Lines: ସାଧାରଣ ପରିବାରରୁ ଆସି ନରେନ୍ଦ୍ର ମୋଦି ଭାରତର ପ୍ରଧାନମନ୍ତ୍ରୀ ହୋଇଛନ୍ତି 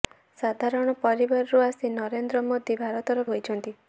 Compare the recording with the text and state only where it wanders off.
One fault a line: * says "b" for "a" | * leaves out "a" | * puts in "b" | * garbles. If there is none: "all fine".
* leaves out "ପ୍ରଧାନମନ୍ତ୍ରୀ"